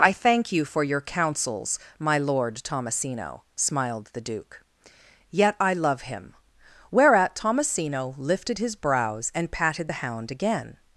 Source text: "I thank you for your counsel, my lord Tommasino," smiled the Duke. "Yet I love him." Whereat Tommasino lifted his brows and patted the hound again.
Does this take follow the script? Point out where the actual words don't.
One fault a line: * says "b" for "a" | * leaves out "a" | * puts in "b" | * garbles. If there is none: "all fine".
* says "counsels" for "counsel"